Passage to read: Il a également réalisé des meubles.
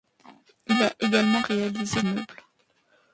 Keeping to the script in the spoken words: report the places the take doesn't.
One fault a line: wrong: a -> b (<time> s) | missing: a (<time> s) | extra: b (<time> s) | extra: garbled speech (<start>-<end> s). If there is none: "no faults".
missing: des (2.0 s)